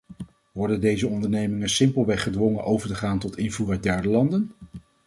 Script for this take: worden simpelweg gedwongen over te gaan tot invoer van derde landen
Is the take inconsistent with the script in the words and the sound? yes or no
yes